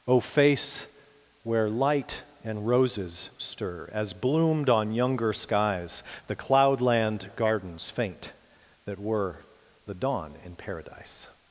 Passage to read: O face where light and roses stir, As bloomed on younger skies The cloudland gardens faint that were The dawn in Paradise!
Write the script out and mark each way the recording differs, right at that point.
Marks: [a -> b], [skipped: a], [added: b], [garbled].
O face where light and roses stir, As bloomed on younger skies The cloudland gardens faint that were The dawn in Paradise!